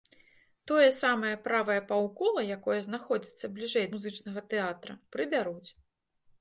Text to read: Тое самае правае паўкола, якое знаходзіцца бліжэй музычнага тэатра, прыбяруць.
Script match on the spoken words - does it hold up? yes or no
yes